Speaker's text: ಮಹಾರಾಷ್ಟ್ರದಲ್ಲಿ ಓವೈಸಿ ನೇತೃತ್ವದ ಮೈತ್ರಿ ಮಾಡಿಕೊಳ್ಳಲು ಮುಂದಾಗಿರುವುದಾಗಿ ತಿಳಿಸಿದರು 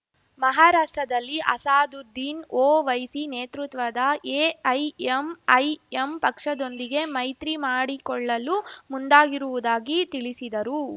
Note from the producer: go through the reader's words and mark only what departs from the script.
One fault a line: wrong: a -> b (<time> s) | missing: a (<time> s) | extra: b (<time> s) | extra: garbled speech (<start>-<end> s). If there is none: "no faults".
extra: ಅಸಾದುದ್ದೀನ್ (1.5 s)
extra: ಎಐಎಂಐಎಂ ಪಕ್ಷದೊಂದಿಗೆ (4.4 s)